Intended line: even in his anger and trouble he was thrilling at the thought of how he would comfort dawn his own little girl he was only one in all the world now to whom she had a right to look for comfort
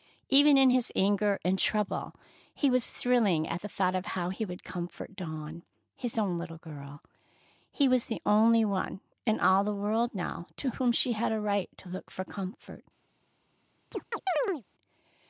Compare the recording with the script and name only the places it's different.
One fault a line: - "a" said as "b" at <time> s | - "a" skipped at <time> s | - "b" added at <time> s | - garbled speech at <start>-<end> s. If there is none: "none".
- "the" added at 8.1 s